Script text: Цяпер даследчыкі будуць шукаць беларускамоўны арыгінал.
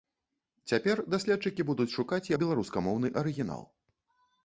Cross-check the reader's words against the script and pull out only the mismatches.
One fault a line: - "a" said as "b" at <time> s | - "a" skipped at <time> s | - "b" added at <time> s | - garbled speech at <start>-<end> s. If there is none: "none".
none